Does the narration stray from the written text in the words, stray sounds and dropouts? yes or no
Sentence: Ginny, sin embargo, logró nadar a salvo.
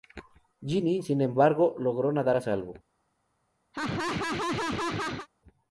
yes